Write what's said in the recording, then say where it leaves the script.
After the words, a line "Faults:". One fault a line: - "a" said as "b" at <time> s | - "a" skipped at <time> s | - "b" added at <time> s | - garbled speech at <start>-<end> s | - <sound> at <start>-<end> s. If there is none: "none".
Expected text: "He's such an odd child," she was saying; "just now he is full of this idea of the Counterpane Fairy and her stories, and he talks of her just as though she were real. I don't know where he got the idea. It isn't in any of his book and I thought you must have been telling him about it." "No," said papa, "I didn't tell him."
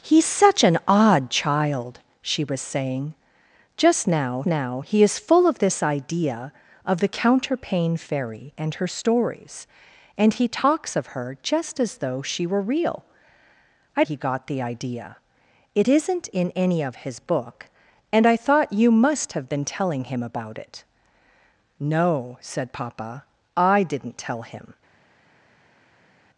"He's such an odd child," she was saying; "just now now he is full of this idea of the Counterpane Fairy and her stories, and he talks of her just as though she were real. I he got the idea. It isn't in any of his book and I thought you must have been telling him about it." "No," said papa, "I didn't tell him."
Faults:
- "now" added at 4.5 s
- "don't know where" skipped at 14.0 s